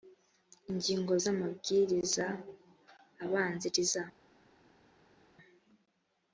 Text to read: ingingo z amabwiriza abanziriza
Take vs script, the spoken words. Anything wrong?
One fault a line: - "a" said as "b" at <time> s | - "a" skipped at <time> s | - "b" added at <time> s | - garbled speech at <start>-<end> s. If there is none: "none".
none